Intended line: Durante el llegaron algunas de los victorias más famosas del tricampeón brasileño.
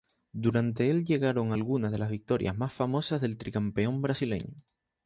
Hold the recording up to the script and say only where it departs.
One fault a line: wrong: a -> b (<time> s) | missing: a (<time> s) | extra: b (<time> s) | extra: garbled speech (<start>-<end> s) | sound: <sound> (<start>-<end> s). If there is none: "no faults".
wrong: los -> las (2.0 s)